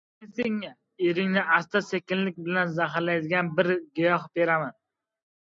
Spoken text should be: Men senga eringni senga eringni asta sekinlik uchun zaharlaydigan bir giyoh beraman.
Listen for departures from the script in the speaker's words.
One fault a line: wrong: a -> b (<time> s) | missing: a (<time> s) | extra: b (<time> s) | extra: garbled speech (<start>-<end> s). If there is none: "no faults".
missing: senga eringni (1.4 s)
wrong: uchun -> bilan (2.5 s)